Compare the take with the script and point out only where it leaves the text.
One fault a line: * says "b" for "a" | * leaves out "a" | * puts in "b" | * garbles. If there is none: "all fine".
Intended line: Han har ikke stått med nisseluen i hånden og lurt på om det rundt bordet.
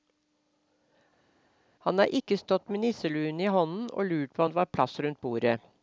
* puts in "var plass"